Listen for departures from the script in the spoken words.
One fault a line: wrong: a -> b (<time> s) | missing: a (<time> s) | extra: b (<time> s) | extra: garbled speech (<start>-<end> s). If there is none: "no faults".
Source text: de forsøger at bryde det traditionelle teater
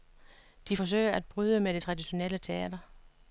extra: med (1.6 s)